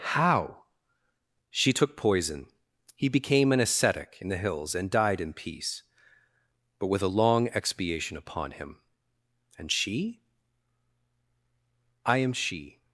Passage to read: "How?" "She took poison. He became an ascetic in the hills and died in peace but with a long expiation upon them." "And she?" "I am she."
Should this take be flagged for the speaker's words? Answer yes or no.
yes